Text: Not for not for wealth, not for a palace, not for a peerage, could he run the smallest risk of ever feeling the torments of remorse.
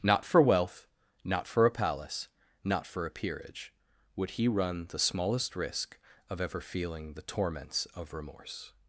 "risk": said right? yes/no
yes